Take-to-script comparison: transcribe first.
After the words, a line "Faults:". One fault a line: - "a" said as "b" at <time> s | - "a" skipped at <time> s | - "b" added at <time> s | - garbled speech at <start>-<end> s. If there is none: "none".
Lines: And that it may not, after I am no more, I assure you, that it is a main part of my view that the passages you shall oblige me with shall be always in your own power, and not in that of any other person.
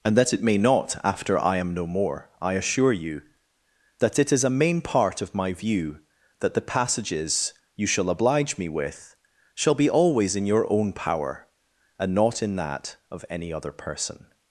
And that it may not, after I am no more, I assure you, that it is a main part of my view that the passages you shall oblige me with shall be always in your own power, and not in that of any other person.
Faults:
none